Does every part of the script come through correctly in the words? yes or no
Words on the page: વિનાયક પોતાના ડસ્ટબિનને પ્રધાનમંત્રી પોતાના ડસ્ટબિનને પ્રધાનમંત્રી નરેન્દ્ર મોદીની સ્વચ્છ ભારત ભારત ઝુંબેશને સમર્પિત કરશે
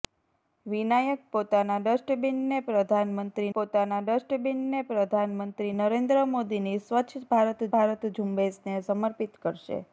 yes